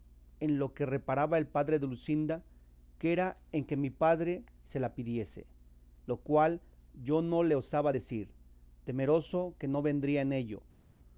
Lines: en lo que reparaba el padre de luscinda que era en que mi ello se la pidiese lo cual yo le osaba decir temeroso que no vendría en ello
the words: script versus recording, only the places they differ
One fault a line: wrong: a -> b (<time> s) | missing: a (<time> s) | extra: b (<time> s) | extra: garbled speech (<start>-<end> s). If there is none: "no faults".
wrong: ello -> padre (3.9 s)
extra: no (7.2 s)